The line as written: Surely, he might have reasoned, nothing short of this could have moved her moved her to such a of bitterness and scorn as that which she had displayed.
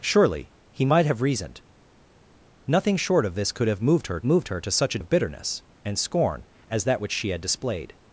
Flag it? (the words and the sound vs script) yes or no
no